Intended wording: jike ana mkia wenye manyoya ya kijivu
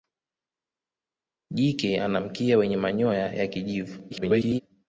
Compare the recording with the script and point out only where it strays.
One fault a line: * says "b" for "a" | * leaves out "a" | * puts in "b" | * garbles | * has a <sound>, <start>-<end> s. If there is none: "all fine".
* garbles